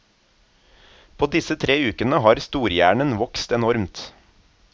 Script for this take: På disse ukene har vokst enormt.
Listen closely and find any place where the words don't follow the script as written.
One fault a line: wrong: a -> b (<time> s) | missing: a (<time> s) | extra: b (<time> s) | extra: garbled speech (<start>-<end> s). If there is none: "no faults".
extra: tre (1.6 s)
extra: storhjernen (2.5 s)